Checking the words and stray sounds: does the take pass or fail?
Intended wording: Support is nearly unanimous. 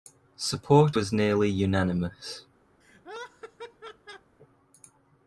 fail